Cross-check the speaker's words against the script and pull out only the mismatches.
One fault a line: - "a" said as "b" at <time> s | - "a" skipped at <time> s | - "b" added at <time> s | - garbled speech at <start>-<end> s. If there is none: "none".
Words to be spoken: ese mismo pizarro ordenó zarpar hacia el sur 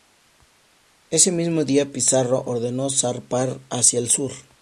- "día" added at 1.6 s